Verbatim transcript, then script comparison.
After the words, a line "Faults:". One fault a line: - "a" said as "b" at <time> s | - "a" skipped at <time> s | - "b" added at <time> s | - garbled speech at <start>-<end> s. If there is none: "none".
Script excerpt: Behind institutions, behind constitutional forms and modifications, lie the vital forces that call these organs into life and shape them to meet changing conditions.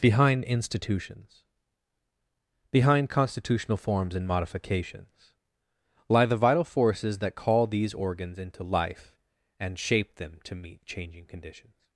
Behind institutions, behind constitutional forms and modifications, lie the vital forces that call these organs into life and shape them to meet changing conditions.
Faults:
none